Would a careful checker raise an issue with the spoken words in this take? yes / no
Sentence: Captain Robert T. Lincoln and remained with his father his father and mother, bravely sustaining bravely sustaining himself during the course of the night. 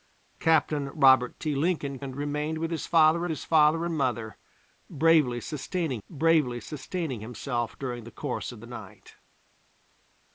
no